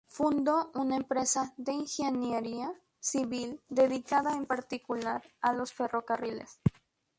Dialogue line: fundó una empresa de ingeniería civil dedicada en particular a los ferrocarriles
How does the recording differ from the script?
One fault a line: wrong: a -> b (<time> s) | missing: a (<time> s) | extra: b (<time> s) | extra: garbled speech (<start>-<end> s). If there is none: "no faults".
no faults